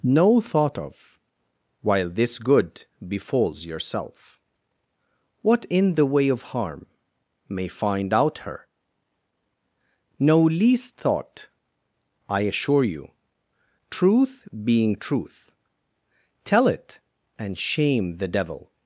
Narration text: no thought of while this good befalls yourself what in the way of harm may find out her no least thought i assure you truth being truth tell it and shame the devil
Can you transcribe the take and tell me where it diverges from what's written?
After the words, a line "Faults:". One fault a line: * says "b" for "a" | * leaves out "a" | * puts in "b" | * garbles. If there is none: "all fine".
no thought of while this good befalls yourself what in the way of harm may find out her no least thought i assure you truth being truth tell it and shame the devil
Faults:
all fine